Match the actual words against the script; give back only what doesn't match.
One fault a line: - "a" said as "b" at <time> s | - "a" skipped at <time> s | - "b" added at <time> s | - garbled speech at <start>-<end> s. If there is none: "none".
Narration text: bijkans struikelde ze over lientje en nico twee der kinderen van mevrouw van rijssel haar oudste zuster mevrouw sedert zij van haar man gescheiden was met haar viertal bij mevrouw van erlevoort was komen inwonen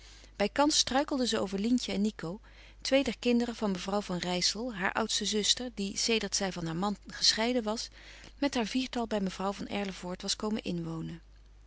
- "mevrouw" said as "die" at 5.7 s